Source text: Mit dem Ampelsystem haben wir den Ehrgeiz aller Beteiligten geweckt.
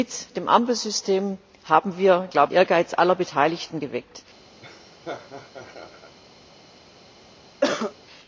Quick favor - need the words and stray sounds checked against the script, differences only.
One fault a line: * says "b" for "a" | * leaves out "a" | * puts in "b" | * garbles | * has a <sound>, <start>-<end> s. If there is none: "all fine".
* leaves out "den"
* has a laugh, 4.6-6.1 s
* has a cough, 7.6-7.9 s